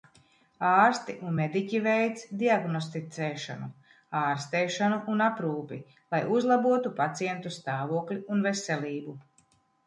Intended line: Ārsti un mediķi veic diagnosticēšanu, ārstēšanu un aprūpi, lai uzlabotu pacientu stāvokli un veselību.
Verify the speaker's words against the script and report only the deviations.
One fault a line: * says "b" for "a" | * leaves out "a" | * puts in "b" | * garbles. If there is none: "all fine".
all fine